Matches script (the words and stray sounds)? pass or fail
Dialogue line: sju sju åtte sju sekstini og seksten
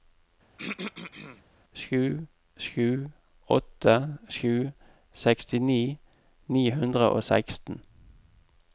fail